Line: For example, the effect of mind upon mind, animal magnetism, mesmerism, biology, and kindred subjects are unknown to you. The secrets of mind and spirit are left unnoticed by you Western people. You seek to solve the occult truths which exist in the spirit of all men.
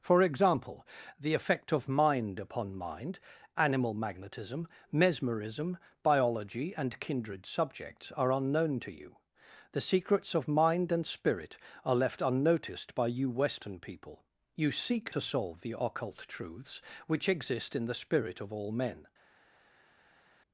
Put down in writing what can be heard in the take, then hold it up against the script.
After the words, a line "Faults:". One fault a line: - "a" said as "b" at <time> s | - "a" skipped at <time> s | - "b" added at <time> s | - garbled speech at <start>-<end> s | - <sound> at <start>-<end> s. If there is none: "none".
For example, the effect of mind upon mind, animal magnetism, mesmerism, biology, and kindred subjects are unknown to you. The secrets of mind and spirit are left unnoticed by you Western people. You seek to solve the occult truths which exist in the spirit of all men.
Faults:
none